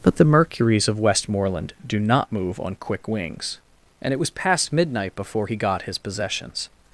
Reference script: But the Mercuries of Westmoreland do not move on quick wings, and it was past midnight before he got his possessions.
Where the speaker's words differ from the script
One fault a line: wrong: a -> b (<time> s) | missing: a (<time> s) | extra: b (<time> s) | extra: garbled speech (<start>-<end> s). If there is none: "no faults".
no faults